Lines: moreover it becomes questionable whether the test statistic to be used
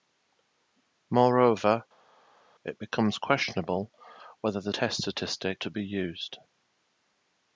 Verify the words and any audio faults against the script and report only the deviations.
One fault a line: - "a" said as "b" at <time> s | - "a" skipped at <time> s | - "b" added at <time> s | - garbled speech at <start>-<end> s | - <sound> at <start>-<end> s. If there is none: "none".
none